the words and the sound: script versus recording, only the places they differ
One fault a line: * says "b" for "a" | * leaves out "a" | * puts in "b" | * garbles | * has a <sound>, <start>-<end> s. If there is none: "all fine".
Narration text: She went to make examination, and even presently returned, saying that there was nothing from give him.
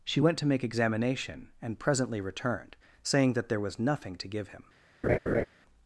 * leaves out "even"
* says "to" for "from"
* has a laugh, 5.0-5.5 s